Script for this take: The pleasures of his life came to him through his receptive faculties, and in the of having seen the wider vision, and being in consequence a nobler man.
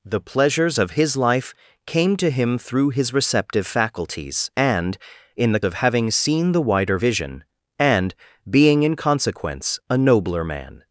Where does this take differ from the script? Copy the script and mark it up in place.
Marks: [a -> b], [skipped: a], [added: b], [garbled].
The pleasures of his life came to him through his receptive faculties, and in the of having seen the wider vision, and being in consequence a nobler man.